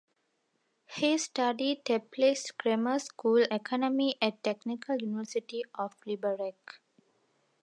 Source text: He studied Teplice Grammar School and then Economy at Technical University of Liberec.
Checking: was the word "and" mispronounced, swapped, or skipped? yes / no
yes